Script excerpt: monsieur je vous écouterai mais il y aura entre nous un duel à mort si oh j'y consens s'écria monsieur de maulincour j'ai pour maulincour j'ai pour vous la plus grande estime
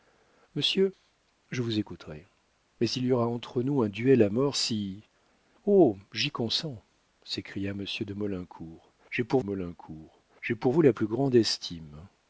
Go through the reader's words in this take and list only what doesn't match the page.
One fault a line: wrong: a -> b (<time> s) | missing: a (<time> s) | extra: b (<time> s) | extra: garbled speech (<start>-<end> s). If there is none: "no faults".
no faults